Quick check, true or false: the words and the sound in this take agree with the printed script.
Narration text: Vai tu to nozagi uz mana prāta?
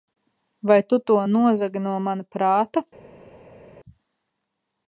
false